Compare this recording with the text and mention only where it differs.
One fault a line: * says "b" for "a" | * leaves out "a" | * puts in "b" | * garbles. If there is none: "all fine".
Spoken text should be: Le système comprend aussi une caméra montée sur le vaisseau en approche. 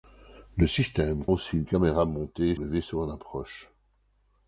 * leaves out "comprend"
* leaves out "sur"